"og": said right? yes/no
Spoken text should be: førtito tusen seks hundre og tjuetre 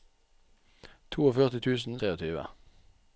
no